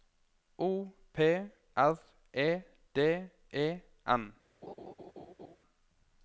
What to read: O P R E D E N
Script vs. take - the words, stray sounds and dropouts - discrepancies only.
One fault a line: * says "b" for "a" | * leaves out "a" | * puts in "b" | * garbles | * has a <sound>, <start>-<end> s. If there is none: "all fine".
* has a laugh, 4.6-5.6 s